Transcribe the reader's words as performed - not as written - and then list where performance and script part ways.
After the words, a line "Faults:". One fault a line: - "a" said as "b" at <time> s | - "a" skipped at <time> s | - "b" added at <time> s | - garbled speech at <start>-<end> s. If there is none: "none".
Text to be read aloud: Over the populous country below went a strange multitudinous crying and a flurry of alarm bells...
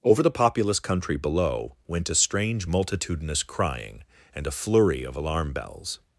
Over the populous country below went a strange multitudinous crying and a flurry of alarm bells...
Faults:
none